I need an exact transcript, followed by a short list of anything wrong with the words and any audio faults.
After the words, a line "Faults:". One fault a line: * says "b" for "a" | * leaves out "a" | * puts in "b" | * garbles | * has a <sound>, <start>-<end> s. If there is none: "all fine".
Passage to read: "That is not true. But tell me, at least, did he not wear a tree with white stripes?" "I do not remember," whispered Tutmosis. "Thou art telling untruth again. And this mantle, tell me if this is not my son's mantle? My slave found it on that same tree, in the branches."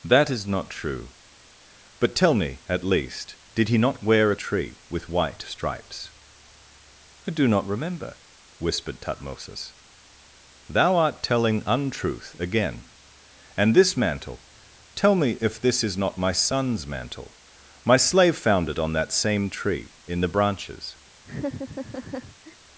"That is not true. But tell me, at least, did he not wear a tree with white stripes?" "I do not remember," whispered Tutmosis. "Thou art telling untruth again. And this mantle, tell me if this is not my son's mantle? My slave found it on that same tree, in the branches."
Faults:
* has a laugh, 21.2-22.6 s